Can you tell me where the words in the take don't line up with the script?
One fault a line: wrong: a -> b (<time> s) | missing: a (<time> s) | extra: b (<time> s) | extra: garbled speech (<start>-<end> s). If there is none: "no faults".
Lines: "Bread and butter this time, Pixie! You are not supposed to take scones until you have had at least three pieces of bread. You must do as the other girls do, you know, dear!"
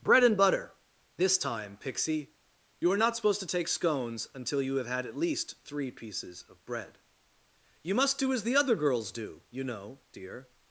no faults